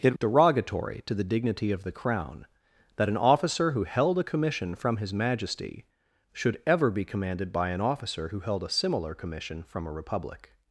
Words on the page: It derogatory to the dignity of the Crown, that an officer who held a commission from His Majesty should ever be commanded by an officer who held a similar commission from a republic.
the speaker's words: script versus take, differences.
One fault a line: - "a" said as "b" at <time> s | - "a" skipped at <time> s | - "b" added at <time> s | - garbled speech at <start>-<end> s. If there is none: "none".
none